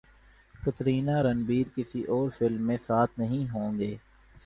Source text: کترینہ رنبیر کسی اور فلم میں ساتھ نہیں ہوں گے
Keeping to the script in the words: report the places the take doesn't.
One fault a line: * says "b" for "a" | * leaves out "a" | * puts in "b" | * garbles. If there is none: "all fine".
all fine